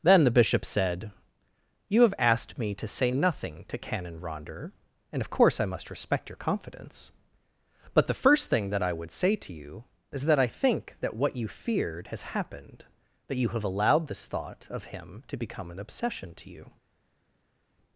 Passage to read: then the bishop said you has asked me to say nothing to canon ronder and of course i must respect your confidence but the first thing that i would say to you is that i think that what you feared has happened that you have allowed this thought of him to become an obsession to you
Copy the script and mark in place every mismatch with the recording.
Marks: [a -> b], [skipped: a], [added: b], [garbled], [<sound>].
then the bishop said you [has -> have] asked me to say nothing to canon ronder and of course i must respect your confidence but the first thing that i would say to you is that i think that what you feared has happened that you have allowed this thought of him to become an obsession to you